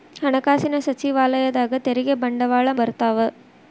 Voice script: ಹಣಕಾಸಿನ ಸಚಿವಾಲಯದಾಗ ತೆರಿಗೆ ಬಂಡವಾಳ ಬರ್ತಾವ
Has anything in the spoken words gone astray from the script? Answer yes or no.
no